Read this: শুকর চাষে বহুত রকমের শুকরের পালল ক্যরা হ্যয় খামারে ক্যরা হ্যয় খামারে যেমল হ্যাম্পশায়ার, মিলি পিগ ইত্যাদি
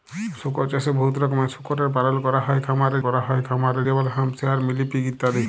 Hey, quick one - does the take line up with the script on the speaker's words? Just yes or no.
yes